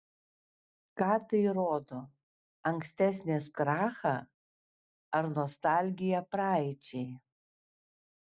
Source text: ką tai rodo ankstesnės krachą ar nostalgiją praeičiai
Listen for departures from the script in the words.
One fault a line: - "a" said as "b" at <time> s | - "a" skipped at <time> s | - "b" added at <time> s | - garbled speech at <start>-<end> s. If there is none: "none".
none